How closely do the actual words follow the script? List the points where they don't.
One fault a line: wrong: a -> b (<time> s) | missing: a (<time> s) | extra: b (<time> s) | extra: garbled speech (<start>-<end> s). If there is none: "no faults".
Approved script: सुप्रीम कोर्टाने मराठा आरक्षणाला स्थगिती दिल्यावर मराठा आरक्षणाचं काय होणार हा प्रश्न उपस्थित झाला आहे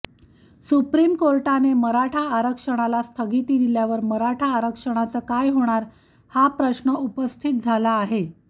no faults